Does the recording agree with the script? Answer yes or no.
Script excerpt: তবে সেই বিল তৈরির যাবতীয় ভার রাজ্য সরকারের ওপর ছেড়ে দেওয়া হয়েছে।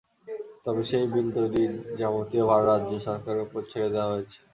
yes